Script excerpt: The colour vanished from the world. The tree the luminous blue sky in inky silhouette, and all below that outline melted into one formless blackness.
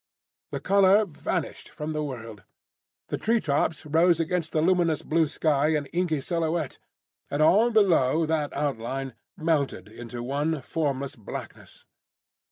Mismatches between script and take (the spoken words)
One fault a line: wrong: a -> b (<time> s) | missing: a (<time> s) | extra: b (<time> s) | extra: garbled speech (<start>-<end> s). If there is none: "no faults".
extra: tops rose against (3.4 s)